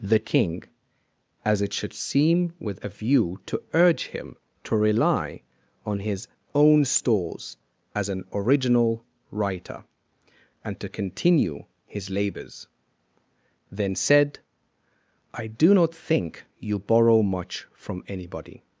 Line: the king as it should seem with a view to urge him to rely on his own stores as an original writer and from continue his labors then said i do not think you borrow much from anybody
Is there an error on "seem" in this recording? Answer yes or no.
no